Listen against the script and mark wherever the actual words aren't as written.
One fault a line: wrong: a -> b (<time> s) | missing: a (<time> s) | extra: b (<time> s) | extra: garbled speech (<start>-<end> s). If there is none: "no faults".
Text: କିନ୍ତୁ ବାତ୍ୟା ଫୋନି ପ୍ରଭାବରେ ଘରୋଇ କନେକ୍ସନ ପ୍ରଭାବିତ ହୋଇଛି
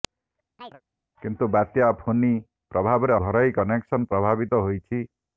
no faults